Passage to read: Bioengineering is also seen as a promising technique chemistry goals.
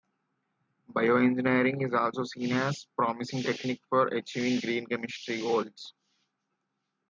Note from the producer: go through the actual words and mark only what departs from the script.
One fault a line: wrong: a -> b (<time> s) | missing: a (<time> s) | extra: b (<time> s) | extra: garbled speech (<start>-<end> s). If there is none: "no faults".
extra: for achieving green (3.9 s)